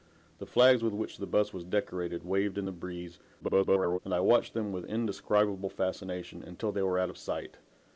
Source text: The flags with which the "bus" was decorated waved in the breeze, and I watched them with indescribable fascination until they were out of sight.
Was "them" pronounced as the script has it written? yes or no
yes